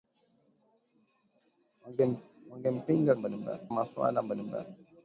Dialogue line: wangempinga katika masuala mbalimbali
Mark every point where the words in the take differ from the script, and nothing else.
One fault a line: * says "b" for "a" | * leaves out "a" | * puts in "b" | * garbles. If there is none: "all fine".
* says "mbalimbali" for "katika"